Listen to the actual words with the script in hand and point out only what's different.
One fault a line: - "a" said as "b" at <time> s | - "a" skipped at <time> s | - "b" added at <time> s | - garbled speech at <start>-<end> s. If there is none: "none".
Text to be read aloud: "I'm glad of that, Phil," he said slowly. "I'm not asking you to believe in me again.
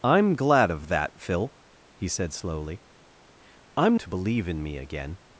- "not asking you" skipped at 4.0 s